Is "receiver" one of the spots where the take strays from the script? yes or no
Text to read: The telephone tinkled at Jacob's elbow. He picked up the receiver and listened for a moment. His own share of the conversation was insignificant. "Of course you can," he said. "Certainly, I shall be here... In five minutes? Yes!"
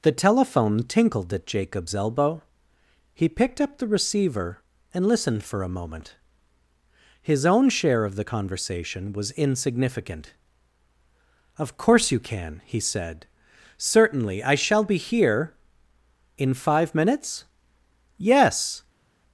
no